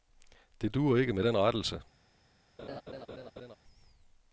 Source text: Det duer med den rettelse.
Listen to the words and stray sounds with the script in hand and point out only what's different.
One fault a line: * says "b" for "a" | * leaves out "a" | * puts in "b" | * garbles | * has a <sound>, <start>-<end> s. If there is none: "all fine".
* puts in "ikke"
* has a laugh, 2.6-3.6 s